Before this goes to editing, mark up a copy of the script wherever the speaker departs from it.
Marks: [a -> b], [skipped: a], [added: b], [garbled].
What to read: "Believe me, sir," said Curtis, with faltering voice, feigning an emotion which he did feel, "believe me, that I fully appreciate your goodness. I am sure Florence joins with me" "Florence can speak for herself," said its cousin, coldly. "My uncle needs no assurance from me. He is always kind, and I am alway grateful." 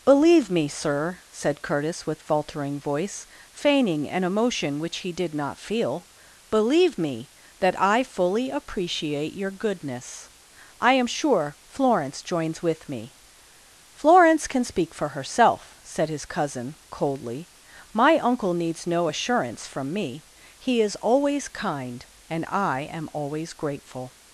"Believe me, sir," said Curtis, with faltering voice, feigning an emotion which he did [added: not] feel, "believe me, that I fully appreciate your goodness. I am sure Florence joins with me" "Florence can speak for herself," said [its -> his] cousin, coldly. "My uncle needs no assurance from me. He is always kind, and I am [alway -> always] grateful."